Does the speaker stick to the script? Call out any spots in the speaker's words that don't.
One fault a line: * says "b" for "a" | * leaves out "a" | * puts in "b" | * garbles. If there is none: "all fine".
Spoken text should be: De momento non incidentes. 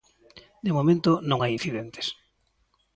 * puts in "hai"